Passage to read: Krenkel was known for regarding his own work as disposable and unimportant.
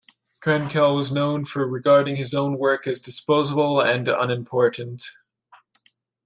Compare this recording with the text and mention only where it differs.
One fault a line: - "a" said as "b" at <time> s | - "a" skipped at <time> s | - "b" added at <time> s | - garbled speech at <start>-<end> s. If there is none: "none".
none